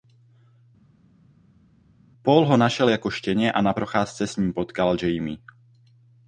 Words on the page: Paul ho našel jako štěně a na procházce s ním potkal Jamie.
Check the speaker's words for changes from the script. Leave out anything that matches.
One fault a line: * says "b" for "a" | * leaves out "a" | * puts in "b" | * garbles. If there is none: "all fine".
all fine